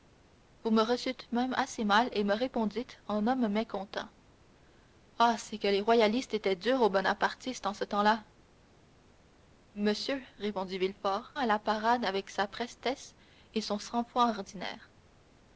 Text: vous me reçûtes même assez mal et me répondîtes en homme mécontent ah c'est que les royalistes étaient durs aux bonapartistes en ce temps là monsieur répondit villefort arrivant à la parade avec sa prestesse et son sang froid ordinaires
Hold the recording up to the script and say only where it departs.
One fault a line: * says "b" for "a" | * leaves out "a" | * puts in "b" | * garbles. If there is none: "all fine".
* leaves out "arrivant"